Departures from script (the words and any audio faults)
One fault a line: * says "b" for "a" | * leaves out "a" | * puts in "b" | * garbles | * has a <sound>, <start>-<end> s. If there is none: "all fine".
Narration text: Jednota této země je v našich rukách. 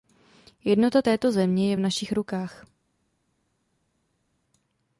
all fine